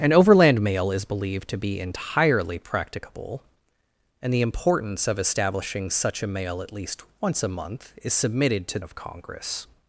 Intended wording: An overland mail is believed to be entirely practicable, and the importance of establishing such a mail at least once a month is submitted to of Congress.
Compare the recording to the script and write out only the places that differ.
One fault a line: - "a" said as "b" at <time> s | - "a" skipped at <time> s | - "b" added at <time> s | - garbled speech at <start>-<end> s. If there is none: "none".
none